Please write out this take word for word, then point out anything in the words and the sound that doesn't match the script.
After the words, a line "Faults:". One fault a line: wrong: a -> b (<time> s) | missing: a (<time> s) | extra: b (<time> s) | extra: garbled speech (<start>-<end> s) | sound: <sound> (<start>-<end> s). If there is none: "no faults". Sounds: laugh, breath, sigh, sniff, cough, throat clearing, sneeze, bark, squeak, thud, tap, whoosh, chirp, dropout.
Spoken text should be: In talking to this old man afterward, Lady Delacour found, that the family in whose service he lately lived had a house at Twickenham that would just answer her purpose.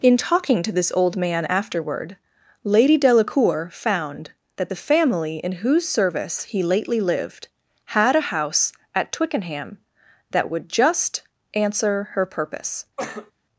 In talking to this old man afterward, Lady Delacour found, that the family in whose service he lately lived had a house at Twickenham that would just answer her purpose.
Faults:
sound: cough (13.0-13.3 s)